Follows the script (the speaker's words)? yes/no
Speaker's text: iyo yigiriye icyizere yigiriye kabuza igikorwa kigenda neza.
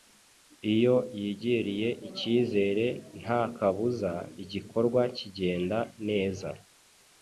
no